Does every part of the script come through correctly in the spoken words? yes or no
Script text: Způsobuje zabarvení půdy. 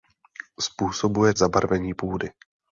yes